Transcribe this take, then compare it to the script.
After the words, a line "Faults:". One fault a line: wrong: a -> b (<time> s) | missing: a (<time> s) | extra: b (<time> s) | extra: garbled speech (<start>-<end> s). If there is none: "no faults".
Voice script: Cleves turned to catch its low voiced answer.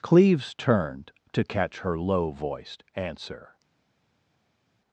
Cleves turned to catch her low voiced answer.
Faults:
wrong: its -> her (1.8 s)